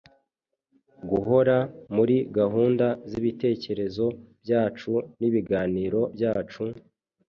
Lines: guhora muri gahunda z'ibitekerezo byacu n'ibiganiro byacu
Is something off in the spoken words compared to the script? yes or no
no